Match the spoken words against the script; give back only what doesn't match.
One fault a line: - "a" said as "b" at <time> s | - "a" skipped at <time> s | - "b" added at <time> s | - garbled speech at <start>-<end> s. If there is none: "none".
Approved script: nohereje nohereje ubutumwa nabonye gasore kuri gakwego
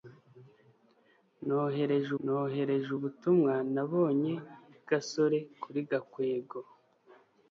none